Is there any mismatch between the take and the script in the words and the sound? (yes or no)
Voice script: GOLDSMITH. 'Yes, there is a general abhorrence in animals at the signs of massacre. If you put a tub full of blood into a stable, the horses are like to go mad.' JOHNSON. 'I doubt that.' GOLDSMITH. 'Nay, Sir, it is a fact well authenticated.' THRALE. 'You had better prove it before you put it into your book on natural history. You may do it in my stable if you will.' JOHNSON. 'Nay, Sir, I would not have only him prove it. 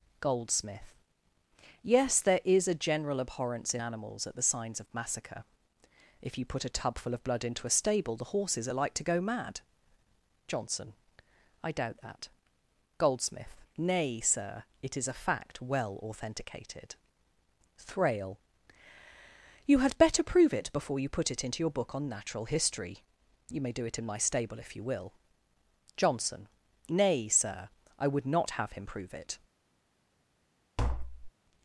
yes